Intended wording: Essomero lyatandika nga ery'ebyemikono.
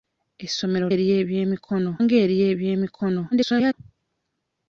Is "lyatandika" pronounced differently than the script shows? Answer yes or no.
yes